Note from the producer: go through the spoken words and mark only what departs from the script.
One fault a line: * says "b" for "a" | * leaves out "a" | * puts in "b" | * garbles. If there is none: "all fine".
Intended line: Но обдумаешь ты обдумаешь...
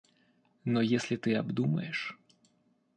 * says "если" for "обдумаешь"